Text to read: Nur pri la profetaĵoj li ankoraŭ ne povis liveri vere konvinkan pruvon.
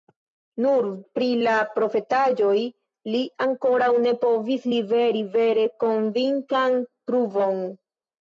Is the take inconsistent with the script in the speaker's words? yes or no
no